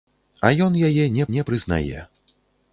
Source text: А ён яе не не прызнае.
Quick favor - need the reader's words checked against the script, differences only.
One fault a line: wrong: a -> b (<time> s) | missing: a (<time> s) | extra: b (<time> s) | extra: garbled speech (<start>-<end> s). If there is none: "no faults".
no faults